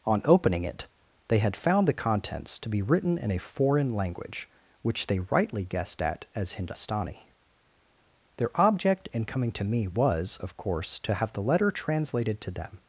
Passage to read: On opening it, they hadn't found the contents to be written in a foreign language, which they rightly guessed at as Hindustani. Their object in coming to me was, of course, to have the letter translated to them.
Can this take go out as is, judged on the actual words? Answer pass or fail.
fail